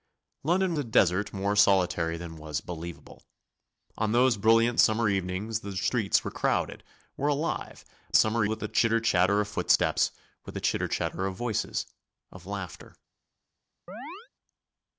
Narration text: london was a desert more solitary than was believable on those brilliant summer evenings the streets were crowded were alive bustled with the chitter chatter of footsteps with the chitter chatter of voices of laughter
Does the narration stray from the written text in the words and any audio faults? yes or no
yes